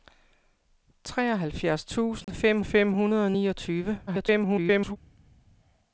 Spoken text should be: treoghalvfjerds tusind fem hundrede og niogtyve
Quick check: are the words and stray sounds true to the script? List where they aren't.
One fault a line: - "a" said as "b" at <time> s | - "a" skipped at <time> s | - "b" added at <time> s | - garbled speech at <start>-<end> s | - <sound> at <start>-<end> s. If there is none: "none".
- dropout at 2.2-2.3 s
- "fem" added at 2.6 s
- garbled speech at 4.1-5.0 s